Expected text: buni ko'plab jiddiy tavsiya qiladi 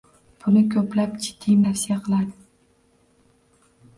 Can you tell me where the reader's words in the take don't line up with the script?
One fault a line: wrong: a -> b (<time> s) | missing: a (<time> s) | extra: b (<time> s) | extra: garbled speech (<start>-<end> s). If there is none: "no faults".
no faults